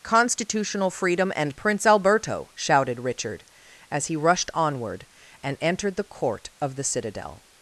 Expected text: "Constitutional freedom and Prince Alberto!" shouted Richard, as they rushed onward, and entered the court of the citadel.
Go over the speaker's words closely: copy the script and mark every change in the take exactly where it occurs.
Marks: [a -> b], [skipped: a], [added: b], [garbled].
"Constitutional freedom and Prince Alberto!" shouted Richard, as [they -> he] rushed onward, and entered the court of the citadel.